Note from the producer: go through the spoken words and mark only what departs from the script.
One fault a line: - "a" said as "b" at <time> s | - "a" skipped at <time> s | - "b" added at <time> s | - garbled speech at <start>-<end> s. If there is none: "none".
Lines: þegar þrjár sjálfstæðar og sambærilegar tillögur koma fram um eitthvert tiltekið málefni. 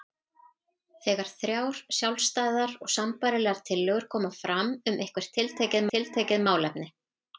- "tiltekið" added at 5.9 s